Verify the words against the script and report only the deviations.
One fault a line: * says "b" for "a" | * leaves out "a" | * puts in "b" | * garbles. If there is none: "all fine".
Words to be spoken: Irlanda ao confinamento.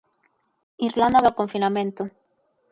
all fine